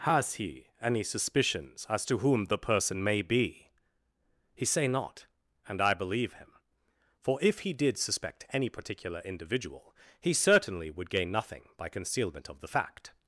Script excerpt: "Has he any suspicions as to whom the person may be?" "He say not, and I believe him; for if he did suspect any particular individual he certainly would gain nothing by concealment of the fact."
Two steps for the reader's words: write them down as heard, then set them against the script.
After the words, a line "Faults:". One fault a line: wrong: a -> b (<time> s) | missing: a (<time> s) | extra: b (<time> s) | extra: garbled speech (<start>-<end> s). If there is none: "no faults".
"Has he any suspicions as to whom the person may be?" "He say not, and I believe him; for if he did suspect any particular individual he certainly would gain nothing by concealment of the fact."
Faults:
no faults